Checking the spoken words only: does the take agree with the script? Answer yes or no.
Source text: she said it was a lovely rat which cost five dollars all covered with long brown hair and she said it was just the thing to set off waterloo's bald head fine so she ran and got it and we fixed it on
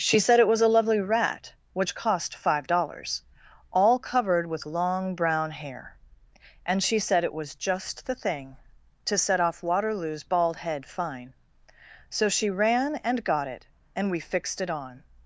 yes